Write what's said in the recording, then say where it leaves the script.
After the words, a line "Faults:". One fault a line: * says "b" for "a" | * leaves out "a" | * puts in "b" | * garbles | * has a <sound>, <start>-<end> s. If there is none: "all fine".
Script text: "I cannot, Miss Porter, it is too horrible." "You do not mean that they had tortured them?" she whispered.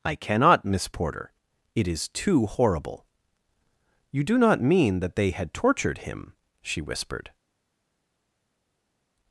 "I cannot, Miss Porter, it is too horrible." "You do not mean that they had tortured him?" she whispered.
Faults:
* says "him" for "them"